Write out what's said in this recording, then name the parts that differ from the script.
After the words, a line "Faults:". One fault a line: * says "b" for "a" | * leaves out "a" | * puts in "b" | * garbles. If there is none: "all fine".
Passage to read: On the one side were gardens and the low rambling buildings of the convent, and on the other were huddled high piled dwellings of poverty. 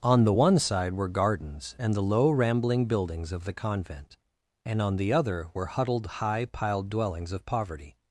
On the one side were gardens and the low rambling buildings of the convent, and on the other were huddled high piled dwellings of poverty.
Faults:
all fine